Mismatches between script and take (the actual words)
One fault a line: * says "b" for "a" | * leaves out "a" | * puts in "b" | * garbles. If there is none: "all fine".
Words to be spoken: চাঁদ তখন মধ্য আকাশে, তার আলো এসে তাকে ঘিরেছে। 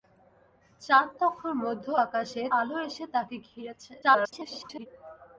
* leaves out "তার"
* garbles